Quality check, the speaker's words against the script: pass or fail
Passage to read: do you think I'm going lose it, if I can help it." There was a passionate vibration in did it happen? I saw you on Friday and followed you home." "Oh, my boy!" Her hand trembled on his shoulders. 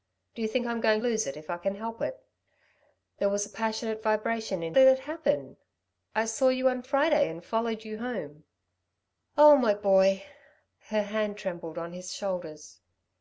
pass